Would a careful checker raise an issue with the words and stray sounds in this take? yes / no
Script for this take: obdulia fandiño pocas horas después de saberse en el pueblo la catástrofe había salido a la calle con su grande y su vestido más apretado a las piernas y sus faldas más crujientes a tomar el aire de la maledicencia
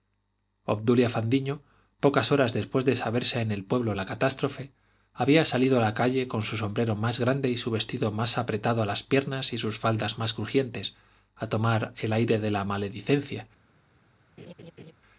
yes